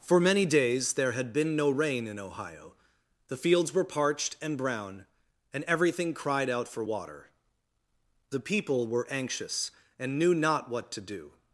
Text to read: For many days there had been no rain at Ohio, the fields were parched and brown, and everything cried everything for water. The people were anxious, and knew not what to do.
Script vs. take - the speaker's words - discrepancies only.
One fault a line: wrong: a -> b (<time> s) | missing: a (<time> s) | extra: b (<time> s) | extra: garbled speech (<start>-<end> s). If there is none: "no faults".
wrong: at -> in (2.1 s)
wrong: everything -> out (6.5 s)